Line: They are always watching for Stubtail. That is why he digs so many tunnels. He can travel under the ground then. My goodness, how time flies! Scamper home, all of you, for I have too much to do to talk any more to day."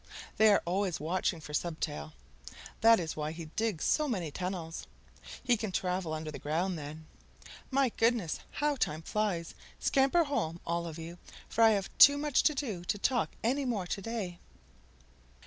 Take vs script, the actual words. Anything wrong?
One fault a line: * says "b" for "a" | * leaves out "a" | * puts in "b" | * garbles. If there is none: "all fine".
all fine